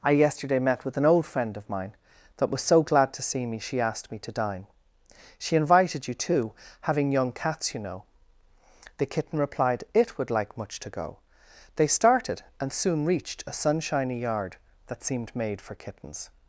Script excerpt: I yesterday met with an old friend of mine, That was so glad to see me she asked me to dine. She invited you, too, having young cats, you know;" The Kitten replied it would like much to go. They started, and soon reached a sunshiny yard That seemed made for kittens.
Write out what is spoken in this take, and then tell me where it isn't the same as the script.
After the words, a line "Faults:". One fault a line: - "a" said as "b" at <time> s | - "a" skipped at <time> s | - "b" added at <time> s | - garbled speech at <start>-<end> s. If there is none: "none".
I yesterday met with an old friend of mine, That was so glad to see me she asked me to dine. She invited you, too, having young cats, you know;" The Kitten replied it would like much to go. They started, and soon reached a sunshiny yard That seemed made for kittens.
Faults:
none